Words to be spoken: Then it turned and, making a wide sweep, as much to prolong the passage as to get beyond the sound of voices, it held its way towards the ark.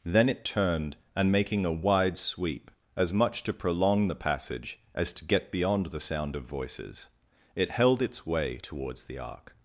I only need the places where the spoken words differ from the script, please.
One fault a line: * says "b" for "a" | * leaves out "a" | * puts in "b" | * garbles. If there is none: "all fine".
all fine